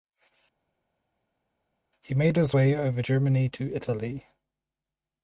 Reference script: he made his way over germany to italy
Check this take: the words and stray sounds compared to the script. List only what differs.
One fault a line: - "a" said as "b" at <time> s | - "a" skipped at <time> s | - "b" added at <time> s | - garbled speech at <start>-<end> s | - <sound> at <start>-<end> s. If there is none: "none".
none